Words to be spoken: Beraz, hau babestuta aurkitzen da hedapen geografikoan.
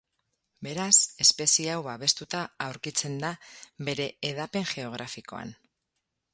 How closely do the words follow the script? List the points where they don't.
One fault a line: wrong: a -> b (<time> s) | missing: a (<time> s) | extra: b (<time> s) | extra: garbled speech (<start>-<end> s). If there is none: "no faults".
extra: espezie (1.2 s)
extra: bere (3.9 s)